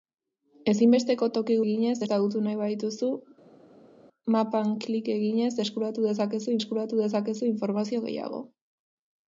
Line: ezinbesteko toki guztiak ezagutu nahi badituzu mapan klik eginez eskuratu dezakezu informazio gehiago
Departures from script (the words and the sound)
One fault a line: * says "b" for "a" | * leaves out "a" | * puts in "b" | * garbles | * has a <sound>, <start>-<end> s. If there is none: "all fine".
* says "eginez" for "guztiak"
* puts in "eskuratu dezakezu"